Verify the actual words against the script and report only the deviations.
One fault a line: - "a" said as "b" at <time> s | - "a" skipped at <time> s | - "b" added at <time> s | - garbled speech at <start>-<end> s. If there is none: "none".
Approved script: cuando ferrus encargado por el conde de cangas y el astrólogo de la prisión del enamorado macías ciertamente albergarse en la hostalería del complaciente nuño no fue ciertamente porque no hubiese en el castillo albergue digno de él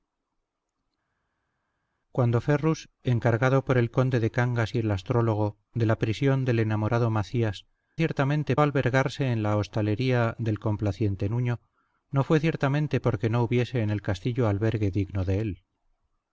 none